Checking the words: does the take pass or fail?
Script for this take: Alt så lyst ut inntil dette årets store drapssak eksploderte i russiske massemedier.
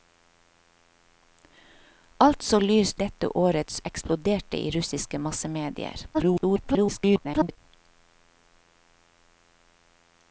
fail